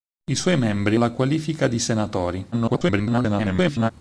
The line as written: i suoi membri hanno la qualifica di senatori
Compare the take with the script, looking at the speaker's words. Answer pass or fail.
fail